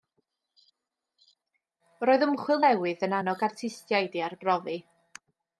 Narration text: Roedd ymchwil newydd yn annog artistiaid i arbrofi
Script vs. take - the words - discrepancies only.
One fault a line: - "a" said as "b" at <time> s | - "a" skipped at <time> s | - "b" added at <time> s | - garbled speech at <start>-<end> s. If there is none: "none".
none